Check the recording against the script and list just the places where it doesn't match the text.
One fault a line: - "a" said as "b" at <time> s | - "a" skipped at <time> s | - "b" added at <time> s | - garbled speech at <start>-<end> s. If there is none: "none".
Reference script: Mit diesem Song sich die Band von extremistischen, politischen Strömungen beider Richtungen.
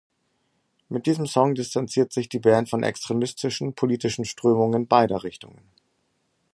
- "distanziert" added at 1.5 s